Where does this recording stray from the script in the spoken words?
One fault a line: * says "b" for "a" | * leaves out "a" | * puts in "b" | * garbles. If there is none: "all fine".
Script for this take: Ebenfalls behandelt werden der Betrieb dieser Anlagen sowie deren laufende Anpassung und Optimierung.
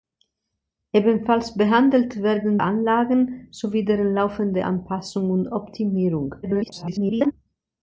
* leaves out "der Betrieb dieser"
* garbles